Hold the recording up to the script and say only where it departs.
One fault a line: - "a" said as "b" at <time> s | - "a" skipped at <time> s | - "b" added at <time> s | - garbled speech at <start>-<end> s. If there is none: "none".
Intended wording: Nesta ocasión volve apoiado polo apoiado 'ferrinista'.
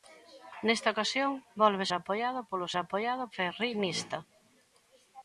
none